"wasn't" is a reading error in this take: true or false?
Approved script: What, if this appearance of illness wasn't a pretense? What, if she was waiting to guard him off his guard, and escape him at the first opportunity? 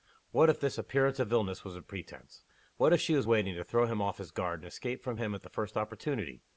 true